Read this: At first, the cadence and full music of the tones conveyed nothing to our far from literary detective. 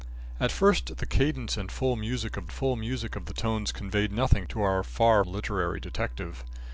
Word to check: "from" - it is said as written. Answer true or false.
false